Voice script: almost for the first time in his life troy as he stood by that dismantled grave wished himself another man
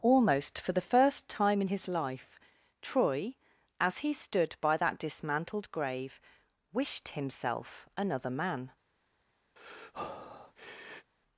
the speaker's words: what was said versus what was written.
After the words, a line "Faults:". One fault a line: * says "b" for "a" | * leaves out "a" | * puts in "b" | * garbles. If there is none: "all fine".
almost for the first time in his life troy as he stood by that dismantled grave wished himself another man
Faults:
all fine